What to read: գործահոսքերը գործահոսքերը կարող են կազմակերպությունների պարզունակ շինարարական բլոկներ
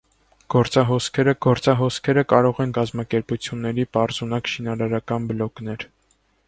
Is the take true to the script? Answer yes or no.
yes